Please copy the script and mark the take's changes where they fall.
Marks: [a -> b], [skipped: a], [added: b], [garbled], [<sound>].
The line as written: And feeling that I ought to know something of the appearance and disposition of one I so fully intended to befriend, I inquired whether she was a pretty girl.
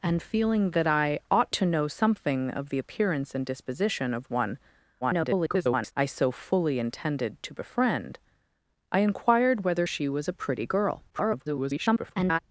And feeling that I ought to know something of the appearance and disposition of one [garbled] I so fully intended to befriend, I inquired whether she was a pretty girl. [garbled]